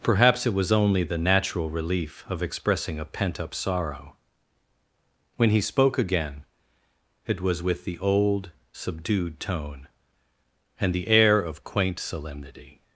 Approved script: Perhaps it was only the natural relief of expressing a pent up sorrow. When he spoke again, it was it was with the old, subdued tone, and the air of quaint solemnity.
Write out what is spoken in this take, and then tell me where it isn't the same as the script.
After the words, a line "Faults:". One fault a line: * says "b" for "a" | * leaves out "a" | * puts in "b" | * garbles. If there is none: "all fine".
Perhaps it was only the natural relief of expressing a pent up sorrow. When he spoke again, it was with the old, subdued tone, and the air of quaint solemnity.
Faults:
* leaves out "it was"